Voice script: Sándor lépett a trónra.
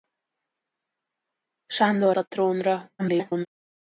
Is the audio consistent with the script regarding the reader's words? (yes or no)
no